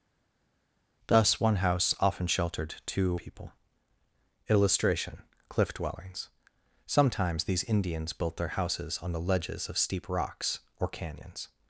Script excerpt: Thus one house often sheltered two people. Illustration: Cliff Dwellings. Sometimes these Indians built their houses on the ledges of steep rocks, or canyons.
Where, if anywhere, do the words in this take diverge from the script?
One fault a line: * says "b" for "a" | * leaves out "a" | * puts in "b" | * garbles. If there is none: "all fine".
all fine